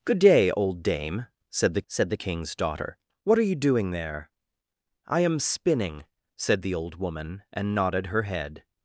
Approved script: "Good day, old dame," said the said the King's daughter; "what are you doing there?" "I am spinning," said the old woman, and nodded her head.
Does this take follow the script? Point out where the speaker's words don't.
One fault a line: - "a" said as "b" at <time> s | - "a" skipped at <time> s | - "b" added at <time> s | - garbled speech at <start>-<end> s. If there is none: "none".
none